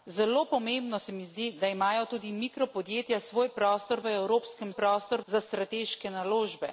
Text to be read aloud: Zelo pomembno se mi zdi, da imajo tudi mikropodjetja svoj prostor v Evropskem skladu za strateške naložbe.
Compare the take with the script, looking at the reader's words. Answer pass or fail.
fail